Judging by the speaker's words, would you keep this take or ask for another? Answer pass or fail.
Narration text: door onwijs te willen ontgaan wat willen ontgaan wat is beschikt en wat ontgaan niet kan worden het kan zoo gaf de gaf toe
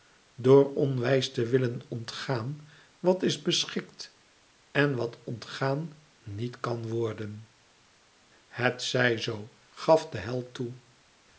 fail